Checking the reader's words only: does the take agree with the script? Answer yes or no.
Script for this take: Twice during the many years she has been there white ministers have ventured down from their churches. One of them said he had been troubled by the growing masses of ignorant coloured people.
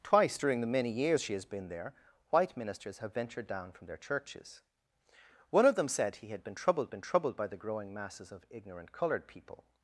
no